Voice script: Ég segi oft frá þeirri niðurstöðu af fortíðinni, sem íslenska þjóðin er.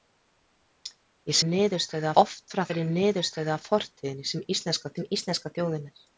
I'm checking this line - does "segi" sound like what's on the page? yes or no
no